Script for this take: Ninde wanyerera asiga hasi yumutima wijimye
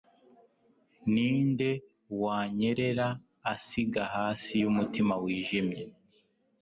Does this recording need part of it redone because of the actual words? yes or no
no